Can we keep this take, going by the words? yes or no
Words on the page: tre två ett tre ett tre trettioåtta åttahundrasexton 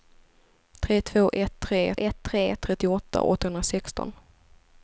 yes